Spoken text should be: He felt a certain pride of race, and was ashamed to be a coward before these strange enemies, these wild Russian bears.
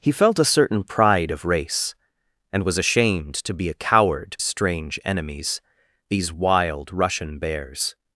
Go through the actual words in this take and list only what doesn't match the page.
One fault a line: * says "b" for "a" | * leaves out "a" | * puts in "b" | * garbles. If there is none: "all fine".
* leaves out "before these"